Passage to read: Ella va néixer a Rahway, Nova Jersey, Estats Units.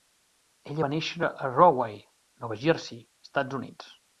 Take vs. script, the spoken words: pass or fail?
pass